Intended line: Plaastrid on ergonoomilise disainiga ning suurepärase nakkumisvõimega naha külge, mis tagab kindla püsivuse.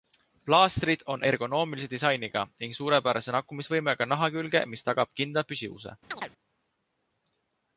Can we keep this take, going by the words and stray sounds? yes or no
no